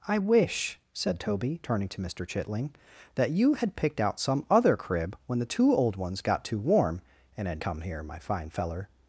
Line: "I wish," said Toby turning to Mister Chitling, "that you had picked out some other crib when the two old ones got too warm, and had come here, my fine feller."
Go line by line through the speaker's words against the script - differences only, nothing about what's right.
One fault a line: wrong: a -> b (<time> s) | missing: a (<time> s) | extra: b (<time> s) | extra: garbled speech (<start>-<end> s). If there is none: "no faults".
no faults